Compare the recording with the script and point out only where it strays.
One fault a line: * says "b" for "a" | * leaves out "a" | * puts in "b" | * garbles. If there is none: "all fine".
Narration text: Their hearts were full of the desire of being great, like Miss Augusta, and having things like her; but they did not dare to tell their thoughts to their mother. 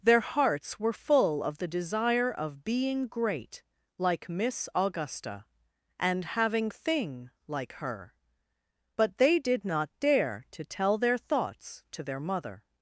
* says "thing" for "things"